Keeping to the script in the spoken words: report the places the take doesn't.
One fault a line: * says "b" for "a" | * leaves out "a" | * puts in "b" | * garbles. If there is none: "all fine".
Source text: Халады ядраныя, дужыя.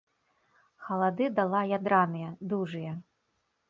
* puts in "дала"